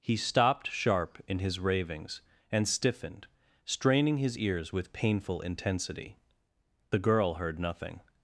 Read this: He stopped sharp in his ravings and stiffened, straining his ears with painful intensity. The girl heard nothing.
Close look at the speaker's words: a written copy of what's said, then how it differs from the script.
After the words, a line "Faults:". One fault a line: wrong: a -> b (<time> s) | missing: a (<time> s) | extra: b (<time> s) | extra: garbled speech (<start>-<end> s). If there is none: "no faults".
He stopped sharp in his ravings and stiffened, straining his ears with painful intensity. The girl heard nothing.
Faults:
no faults